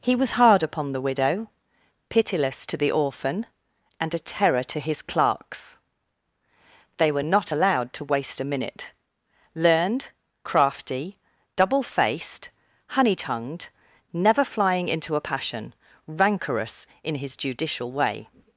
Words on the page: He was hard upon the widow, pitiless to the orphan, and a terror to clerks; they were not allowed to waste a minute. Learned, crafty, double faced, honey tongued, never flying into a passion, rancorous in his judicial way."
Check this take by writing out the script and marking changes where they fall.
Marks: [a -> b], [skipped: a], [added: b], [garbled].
He was hard upon the widow, pitiless to the orphan, and a terror to [added: his] clerks; they were not allowed to waste a minute. Learned, crafty, double faced, honey tongued, never flying into a passion, rancorous in his judicial way."